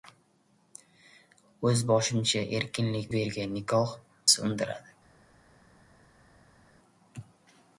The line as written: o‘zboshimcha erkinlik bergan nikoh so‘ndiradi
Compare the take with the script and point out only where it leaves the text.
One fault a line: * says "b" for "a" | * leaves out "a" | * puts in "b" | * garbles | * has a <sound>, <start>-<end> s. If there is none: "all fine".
all fine